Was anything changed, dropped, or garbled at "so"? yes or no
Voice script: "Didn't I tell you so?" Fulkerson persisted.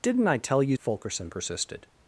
yes